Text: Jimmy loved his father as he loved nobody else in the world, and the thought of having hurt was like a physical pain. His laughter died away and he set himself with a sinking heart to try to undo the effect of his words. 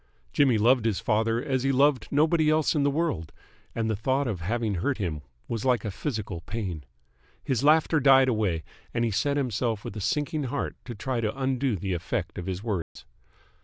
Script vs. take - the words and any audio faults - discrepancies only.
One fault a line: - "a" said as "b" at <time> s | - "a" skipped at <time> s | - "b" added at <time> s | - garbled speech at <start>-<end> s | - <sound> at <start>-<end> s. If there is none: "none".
- "him" added at 4.9 s
- dropout at 12.8-13.0 s